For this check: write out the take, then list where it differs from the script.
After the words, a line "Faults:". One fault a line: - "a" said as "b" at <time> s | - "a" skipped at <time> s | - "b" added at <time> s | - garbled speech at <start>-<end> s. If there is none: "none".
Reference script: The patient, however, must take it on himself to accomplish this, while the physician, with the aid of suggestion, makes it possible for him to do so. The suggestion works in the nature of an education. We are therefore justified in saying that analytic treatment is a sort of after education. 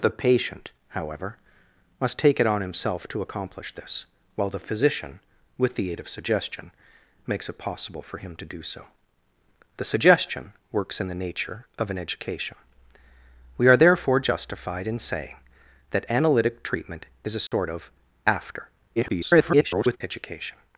The patient, however, must take it on himself to accomplish this, while the physician, with the aid of suggestion, makes it possible for him to do so. The suggestion works in the nature of an education. We are therefore justified in saying that analytic treatment is a sort of after [garbled] education.
Faults:
- garbled speech at 19.0-20.0 s